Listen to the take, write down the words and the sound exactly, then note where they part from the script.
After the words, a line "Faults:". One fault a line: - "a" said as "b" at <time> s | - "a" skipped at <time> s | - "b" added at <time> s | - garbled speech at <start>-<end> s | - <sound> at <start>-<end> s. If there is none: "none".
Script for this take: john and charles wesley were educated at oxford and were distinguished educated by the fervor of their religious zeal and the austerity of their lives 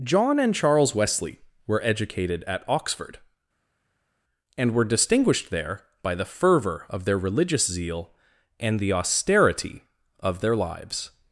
john and charles wesley were educated at oxford and were distinguished there by the fervor of their religious zeal and the austerity of their lives
Faults:
- "educated" said as "there" at 5.5 s